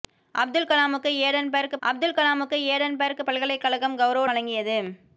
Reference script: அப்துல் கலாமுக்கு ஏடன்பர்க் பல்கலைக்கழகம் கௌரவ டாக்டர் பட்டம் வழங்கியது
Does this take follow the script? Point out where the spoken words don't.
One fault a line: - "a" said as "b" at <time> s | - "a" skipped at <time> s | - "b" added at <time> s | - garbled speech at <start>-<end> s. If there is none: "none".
- "அப்துல் கலாமுக்கு ஏடன்பர்க்" added at 1.8 s
- "டாக்டர் பட்டம்" skipped at 4.3 s